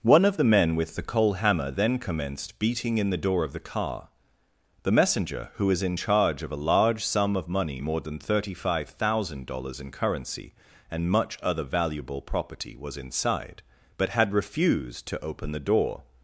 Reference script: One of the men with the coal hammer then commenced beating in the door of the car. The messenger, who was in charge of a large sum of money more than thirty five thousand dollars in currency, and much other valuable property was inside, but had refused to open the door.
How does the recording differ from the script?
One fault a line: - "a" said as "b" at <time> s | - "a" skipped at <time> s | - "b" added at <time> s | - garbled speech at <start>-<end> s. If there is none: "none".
none